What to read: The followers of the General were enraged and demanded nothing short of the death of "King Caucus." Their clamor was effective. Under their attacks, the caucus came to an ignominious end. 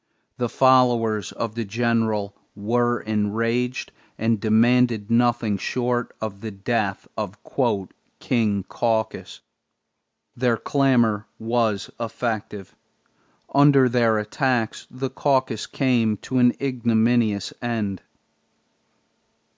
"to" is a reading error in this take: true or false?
false